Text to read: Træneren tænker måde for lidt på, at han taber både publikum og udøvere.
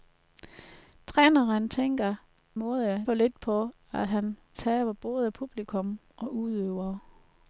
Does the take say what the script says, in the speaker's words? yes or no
yes